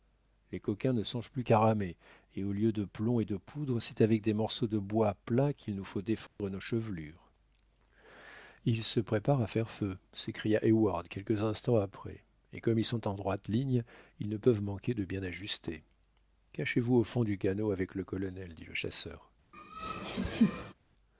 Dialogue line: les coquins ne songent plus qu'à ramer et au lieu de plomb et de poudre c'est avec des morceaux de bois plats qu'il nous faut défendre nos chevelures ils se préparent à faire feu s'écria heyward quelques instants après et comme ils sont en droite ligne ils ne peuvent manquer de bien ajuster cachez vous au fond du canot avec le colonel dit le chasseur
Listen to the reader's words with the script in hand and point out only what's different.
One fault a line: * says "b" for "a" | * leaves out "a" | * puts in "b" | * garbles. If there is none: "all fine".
all fine